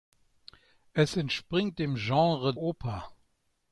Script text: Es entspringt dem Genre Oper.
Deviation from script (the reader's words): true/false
false